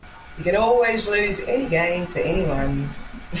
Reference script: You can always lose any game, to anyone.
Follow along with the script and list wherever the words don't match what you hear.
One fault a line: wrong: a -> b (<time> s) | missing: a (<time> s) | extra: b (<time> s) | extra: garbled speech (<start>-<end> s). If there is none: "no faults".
no faults